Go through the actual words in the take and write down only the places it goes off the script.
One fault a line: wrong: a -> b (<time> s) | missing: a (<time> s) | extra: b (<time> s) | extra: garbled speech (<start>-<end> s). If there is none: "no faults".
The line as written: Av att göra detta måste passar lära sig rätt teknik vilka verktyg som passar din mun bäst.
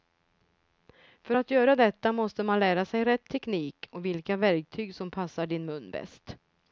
wrong: Av -> För (1.2 s)
wrong: passar -> man (2.4 s)
extra: och (3.9 s)